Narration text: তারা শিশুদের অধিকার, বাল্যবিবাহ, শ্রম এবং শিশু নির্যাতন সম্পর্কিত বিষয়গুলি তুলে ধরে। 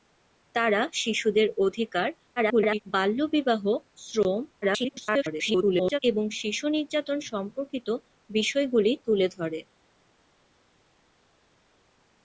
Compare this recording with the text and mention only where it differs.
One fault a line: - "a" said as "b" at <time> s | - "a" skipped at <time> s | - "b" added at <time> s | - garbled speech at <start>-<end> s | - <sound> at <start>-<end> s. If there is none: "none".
- garbled speech at 2.4-2.8 s
- garbled speech at 4.6-6.0 s